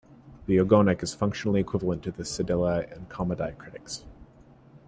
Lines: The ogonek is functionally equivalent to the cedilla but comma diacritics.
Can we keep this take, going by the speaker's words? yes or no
no